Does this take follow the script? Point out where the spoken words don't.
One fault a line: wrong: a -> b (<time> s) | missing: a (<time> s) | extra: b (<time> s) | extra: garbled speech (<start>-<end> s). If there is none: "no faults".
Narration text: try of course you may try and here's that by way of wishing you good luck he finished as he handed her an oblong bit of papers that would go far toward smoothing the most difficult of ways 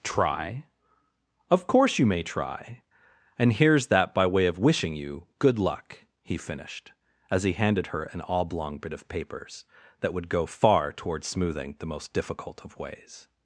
no faults